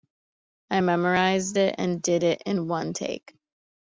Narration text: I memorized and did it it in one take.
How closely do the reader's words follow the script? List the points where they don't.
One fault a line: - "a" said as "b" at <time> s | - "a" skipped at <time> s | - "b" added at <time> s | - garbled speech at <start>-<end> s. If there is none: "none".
- "it" added at 1.6 s
- "it" skipped at 2.4 s